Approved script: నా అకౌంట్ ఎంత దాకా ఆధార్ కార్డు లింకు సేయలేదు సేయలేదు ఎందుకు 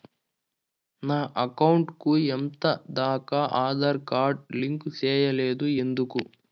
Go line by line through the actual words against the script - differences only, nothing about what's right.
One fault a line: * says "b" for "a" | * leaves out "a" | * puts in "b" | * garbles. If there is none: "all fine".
* puts in "కు"
* leaves out "సేయలేదు"